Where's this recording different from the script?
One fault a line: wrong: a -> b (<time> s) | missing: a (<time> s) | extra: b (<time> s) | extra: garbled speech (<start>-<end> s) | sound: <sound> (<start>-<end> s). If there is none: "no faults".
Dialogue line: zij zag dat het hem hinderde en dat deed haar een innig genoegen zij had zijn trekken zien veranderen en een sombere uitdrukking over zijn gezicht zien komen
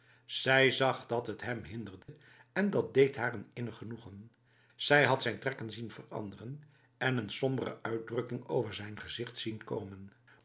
sound: dropout (2.0-2.1 s)